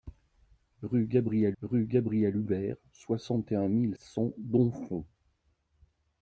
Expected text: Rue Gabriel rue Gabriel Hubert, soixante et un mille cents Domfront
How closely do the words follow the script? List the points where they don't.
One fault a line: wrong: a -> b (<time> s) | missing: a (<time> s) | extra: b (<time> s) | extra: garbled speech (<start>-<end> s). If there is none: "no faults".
no faults